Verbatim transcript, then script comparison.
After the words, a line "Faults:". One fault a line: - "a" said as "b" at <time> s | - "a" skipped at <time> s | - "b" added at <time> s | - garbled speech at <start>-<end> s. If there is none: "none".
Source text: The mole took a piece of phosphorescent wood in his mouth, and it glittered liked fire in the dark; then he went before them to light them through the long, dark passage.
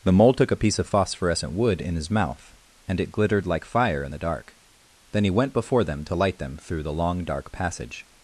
The mole took a piece of phosphorescent wood in his mouth, and it glittered like fire in the dark; then he went before them to light them through the long, dark passage.
Faults:
- "liked" said as "like" at 3.5 s